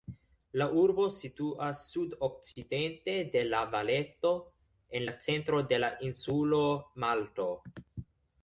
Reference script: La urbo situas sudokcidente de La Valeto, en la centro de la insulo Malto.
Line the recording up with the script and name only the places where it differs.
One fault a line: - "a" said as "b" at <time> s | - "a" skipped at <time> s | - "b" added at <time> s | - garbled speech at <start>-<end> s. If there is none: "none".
none